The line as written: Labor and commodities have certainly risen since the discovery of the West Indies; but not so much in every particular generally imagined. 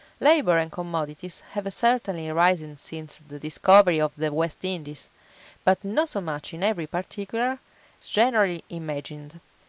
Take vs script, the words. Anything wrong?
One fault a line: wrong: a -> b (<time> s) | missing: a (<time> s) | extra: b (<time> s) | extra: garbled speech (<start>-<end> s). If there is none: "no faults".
no faults